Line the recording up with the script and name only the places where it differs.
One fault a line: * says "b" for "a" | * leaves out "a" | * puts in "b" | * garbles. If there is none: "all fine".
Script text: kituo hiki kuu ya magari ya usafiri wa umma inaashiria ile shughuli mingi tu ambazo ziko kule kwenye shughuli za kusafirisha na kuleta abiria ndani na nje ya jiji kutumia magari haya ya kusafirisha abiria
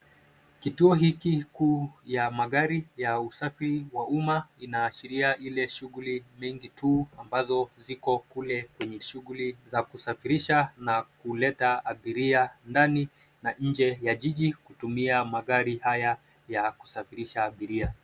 all fine